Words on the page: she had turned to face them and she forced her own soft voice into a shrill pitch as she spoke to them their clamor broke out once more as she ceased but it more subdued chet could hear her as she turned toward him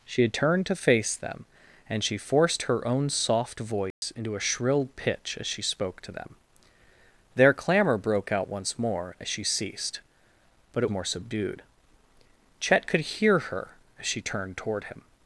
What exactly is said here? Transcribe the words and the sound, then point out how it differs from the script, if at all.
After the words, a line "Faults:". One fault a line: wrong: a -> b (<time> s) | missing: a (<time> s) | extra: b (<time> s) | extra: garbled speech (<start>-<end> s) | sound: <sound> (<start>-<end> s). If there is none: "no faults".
she had turned to face them and she forced her own soft voice into a shrill pitch as she spoke to them their clamor broke out once more as she ceased but it more subdued chet could hear her as she turned toward him
Faults:
sound: dropout (3.9-4.0 s)